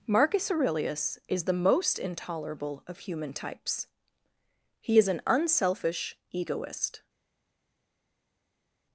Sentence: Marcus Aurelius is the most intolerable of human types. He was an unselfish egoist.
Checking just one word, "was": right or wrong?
wrong